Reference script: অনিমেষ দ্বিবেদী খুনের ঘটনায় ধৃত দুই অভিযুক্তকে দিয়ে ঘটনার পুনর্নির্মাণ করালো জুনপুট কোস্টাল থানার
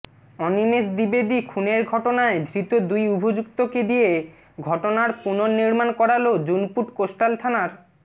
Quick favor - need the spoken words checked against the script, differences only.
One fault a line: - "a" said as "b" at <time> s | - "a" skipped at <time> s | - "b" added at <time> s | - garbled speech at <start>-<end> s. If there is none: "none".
none